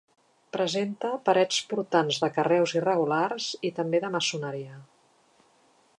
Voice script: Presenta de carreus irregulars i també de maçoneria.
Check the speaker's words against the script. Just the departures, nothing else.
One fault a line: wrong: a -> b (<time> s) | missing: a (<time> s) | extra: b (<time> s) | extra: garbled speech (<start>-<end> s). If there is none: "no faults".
extra: parets portants (1.3 s)